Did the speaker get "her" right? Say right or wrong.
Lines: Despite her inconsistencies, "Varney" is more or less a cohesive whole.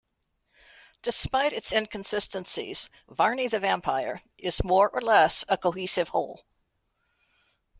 wrong